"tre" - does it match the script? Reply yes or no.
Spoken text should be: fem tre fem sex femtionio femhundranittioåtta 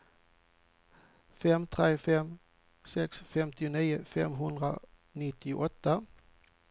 yes